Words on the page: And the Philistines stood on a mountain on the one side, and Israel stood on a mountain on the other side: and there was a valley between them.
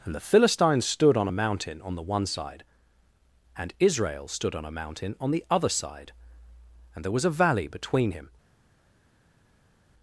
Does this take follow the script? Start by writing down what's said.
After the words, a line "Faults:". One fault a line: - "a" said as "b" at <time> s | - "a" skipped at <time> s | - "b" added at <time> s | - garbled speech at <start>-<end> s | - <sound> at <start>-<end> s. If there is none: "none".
And the Philistines stood on a mountain on the one side, and Israel stood on a mountain on the other side: and there was a valley between him.
Faults:
- "them" said as "him" at 8.1 s